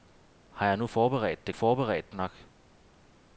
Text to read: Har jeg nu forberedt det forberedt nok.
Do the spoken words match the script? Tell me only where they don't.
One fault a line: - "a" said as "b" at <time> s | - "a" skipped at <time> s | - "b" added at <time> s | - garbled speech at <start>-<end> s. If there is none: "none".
none